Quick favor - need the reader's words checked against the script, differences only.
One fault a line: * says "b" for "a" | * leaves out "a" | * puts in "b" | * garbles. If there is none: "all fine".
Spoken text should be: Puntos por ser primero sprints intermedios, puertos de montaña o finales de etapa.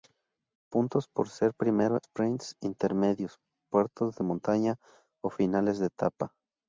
all fine